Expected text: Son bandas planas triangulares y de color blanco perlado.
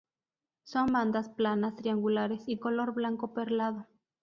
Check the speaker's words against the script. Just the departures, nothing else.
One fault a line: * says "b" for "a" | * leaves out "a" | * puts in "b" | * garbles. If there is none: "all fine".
* leaves out "de"